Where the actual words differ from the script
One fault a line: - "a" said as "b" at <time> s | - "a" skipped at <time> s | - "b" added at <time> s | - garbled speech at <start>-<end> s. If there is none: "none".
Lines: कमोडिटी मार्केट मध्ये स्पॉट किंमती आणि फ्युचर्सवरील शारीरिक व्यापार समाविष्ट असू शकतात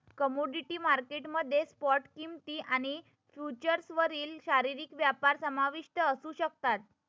none